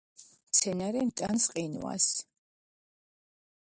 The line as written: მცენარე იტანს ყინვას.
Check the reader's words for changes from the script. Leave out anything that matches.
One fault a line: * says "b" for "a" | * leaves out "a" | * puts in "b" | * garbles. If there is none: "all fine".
all fine